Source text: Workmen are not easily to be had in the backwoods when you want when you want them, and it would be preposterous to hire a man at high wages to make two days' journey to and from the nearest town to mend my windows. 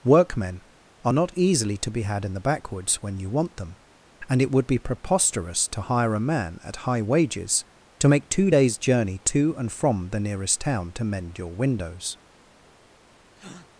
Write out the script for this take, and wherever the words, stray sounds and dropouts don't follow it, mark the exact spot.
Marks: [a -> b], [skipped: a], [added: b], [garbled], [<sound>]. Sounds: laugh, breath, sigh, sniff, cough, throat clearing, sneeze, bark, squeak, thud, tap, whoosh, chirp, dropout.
Workmen are not easily to be had in the backwoods when you want [skipped: when you want] them, and it would be preposterous to hire a man at high wages to make two days' journey to and from the nearest town to mend [my -> your] windows. [breath]